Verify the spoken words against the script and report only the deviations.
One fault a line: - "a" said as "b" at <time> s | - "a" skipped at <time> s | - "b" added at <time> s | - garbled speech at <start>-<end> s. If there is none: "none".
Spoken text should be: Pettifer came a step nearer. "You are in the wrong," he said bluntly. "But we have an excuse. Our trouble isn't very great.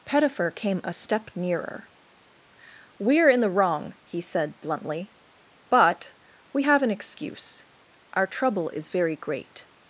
- "You" said as "We" at 3.0 s
- "isn't" said as "is" at 8.7 s